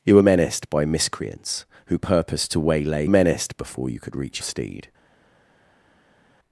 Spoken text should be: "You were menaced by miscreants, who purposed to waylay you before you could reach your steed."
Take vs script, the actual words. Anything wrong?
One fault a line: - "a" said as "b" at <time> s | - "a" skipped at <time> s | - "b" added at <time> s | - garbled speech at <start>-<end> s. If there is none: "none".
- "you" said as "menaced" at 3.1 s
- "your" skipped at 4.4 s